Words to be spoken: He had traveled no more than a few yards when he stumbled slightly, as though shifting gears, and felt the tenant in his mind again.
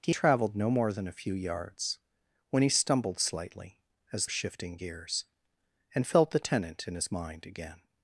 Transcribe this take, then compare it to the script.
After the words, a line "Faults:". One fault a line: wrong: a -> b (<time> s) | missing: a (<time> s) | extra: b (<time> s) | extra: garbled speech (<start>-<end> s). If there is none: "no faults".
He traveled no more than a few yards when he stumbled slightly, as shifting gears, and felt the tenant in his mind again.
Faults:
missing: had (0.1 s)
missing: though (4.3 s)